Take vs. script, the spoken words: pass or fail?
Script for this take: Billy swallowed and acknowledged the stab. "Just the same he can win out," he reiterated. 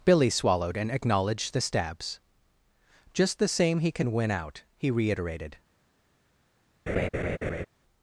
fail